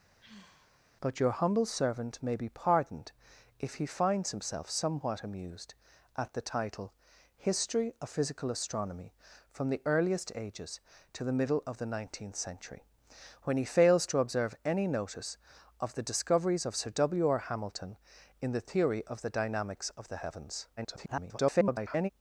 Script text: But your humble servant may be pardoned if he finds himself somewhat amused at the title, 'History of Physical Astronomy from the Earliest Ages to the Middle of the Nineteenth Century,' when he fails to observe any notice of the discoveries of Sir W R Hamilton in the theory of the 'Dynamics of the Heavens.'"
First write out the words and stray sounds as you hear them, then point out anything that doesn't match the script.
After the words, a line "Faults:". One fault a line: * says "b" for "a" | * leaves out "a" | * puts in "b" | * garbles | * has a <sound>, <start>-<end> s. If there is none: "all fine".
But your humble servant may be pardoned if he finds himself somewhat amused at the title, 'History of Physical Astronomy from the Earliest Ages to the Middle of the Nineteenth Century,' when he fails to observe any notice of the discoveries of Sir W R Hamilton in the theory of the 'Dynamics of the Heavens.'" [garbled]
Faults:
* has a sigh, 0.2-0.8 s
* garbles